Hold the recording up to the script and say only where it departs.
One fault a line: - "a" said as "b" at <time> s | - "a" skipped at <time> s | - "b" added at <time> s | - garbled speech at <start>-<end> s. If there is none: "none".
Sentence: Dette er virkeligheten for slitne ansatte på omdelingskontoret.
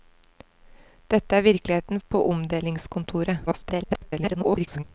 - "for slitne ansatte" skipped at 2.0 s
- garbled speech at 3.5-4.8 s